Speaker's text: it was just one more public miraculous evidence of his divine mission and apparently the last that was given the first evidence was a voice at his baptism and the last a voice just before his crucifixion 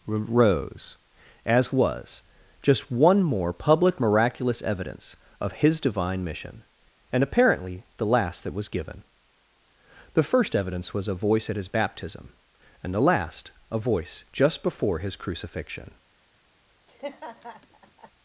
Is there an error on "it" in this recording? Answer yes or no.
yes